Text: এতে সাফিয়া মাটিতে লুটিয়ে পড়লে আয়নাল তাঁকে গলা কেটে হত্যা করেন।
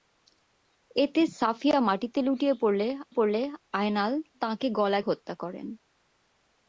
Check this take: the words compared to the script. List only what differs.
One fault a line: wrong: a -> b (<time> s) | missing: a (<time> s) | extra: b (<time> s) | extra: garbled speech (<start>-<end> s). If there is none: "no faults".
extra: পড়লে (3.1 s)
missing: কেটে (5.0 s)